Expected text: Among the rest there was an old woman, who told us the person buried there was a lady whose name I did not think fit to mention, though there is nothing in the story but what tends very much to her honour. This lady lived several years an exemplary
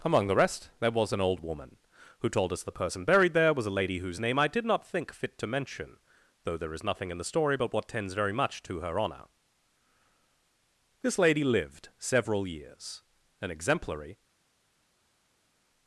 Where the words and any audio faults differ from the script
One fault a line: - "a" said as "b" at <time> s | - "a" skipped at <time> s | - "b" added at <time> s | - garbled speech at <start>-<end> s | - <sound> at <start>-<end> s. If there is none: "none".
none